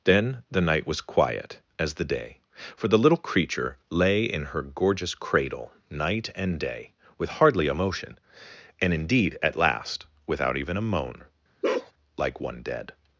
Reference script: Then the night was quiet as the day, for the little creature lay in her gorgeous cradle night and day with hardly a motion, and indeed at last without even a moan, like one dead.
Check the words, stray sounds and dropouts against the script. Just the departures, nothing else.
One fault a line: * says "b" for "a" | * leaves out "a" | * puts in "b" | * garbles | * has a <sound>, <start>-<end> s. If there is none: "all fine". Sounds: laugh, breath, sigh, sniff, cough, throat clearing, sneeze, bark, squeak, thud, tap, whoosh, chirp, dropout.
* has a bark, 11.6-11.9 s